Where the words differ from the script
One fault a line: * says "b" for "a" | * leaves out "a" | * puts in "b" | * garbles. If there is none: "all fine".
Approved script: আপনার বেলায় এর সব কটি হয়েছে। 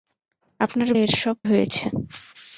* leaves out "বেলায়"
* leaves out "কটি"